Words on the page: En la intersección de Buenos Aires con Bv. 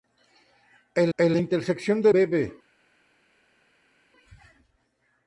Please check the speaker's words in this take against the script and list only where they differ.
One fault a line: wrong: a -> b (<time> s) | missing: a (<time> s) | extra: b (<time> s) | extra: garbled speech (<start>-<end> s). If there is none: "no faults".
extra: en (1.2 s)
missing: Buenos Aires con (2.1 s)